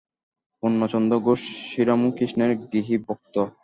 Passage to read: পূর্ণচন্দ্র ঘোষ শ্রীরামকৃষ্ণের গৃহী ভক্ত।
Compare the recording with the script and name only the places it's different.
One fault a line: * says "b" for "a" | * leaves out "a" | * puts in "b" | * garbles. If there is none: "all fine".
all fine